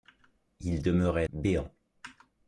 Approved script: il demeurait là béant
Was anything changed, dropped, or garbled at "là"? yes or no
yes